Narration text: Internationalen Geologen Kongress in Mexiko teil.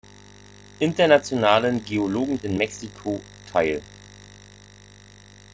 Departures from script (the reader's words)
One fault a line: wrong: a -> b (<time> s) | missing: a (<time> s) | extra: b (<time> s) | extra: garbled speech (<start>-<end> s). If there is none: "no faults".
missing: Kongress (2.4 s)